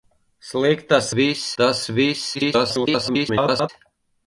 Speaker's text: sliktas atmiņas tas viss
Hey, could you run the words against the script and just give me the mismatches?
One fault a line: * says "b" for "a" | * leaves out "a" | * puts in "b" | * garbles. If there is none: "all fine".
* says "viss" for "atmiņas"
* garbles